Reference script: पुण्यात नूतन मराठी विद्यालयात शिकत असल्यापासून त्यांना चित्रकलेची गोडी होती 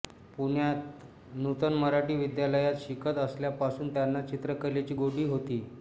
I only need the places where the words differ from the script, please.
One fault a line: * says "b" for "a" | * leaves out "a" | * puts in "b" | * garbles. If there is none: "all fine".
all fine